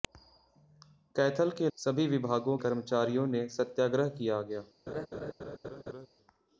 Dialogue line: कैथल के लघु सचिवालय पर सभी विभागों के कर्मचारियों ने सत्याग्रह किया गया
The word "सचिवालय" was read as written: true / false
false